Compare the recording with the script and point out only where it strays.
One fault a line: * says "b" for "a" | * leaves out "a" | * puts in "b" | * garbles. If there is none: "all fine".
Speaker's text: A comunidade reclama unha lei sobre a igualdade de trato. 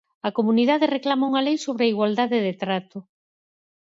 all fine